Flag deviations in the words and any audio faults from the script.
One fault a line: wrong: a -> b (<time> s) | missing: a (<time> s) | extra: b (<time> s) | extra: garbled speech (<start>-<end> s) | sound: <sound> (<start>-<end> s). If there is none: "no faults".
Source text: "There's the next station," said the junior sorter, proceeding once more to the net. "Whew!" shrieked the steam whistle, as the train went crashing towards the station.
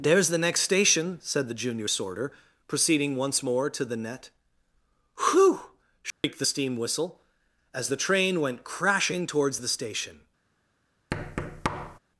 sound: dropout (6.1-6.2 s)
sound: thud (11.1-12.0 s)